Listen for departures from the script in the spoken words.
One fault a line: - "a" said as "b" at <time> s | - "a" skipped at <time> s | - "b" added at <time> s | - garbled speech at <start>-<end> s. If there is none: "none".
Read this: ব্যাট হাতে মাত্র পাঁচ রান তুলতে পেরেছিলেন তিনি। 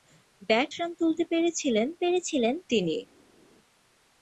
- "হাতে মাত্র পাঁচ" skipped at 0.7 s
- "পেরেছিলেন" added at 2.0 s